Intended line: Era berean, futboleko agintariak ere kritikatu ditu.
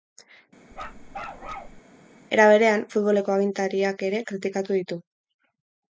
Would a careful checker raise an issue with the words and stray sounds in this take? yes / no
yes